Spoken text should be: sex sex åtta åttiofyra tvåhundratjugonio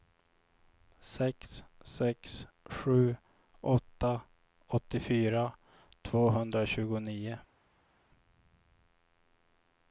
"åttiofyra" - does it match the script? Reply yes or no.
yes